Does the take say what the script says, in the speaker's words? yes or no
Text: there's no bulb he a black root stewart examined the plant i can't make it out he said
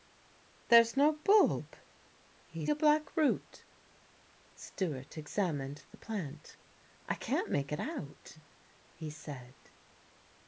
yes